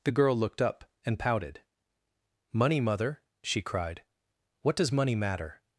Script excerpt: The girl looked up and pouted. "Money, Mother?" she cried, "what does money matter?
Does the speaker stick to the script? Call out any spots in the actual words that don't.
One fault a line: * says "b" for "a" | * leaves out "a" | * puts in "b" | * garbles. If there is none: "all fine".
all fine